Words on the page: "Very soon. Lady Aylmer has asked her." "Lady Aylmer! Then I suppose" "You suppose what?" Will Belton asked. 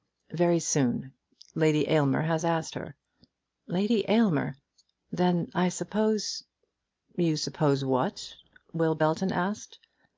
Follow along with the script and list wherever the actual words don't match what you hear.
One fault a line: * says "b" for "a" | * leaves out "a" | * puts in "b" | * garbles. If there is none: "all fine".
all fine